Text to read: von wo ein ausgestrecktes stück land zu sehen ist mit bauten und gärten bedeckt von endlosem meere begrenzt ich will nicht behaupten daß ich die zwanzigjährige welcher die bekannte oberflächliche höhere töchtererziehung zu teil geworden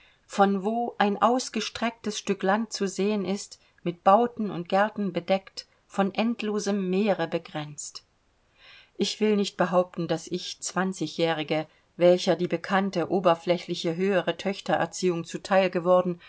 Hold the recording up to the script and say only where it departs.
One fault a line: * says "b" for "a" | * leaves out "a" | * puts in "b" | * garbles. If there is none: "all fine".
* leaves out "die"